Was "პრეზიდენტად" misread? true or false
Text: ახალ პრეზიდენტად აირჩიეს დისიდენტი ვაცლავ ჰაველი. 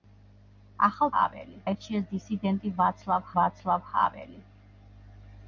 true